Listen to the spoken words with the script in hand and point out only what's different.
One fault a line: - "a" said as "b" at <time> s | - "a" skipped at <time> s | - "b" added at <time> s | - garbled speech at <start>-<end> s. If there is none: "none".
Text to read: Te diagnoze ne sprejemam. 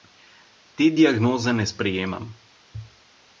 none